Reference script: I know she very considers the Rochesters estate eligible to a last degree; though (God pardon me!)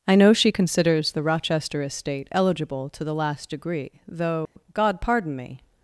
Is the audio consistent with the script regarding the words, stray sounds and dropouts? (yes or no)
no